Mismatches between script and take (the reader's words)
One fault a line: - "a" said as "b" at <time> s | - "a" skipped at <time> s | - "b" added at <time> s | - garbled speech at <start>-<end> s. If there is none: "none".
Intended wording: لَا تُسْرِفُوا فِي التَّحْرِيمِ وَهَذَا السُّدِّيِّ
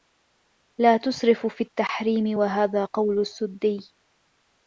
- "قَوْلُ" added at 2.8 s